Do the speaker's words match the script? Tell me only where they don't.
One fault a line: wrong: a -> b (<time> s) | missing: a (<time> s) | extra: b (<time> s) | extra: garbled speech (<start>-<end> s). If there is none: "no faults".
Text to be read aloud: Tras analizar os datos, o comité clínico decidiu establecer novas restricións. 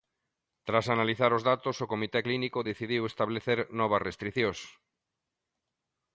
no faults